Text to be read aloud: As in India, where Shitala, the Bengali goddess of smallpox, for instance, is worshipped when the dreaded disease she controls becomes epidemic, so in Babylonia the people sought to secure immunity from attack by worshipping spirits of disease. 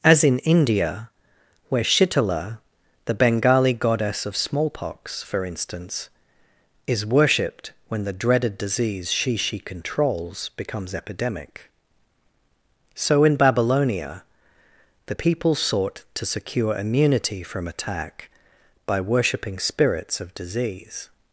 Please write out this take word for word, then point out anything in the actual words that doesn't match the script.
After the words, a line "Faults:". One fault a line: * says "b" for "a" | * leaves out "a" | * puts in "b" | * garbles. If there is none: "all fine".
As in India, where Shitala, the Bengali goddess of smallpox, for instance, is worshipped when the dreaded disease she she controls becomes epidemic, so in Babylonia the people sought to secure immunity from attack by worshipping spirits of disease.
Faults:
* puts in "she"